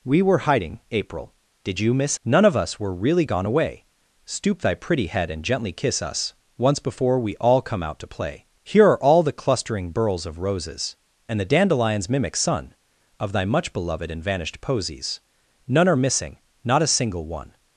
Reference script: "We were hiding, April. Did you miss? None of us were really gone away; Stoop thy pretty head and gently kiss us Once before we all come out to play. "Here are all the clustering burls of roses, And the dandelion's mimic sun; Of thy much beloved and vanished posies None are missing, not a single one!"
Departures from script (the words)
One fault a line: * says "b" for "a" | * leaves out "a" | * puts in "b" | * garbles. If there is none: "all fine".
all fine